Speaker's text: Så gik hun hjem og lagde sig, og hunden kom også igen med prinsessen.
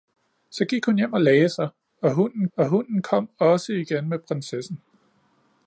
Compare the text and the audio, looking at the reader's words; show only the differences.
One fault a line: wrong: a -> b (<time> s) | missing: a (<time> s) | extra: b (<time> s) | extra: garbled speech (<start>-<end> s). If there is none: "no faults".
extra: og hunden (2.6 s)